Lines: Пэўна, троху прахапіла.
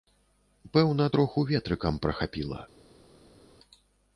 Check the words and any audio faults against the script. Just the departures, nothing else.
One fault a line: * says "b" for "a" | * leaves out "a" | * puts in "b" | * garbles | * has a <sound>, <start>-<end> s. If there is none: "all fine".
* puts in "ветрыкам"